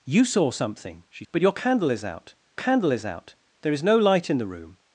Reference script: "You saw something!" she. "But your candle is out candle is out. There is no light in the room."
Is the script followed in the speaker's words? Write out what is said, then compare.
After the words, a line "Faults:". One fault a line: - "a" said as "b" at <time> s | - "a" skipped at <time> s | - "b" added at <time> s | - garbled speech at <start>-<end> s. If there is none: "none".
"You saw something!" she. "But your candle is out candle is out. There is no light in the room."
Faults:
none